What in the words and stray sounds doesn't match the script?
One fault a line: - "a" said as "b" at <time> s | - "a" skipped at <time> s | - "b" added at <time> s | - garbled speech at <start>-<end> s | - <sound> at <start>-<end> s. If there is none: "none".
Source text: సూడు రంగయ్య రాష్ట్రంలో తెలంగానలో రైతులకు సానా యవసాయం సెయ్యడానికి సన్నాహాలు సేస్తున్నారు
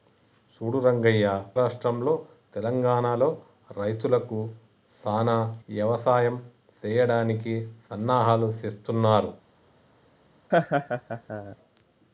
- laugh at 10.5-11.6 s